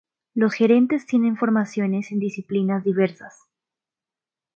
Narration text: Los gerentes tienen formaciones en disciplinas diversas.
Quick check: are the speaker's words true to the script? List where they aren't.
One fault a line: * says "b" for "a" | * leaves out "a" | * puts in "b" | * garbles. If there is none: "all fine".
all fine